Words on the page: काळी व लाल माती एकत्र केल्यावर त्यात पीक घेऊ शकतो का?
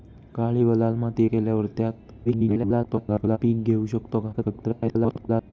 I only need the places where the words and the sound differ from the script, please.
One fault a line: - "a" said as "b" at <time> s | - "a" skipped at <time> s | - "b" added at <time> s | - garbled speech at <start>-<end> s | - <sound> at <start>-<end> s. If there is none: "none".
- "एकत्र" skipped at 1.2 s
- garbled speech at 2.2-3.4 s
- garbled speech at 4.3-5.5 s